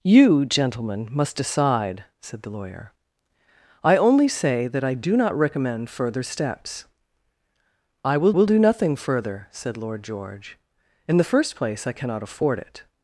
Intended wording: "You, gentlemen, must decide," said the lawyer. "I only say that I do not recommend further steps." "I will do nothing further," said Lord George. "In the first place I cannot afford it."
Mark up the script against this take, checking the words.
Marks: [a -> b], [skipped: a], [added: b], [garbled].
"You, gentlemen, must decide," said the lawyer. "I only say that I do not recommend further steps." "I will [added: will] do nothing further," said Lord George. "In the first place I cannot afford it."